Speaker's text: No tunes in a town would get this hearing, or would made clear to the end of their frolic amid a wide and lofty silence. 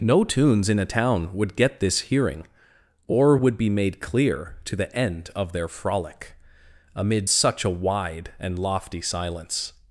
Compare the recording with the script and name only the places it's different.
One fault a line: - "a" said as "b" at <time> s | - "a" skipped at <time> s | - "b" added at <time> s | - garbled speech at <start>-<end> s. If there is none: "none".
- "be" added at 3.6 s
- "such" added at 7.3 s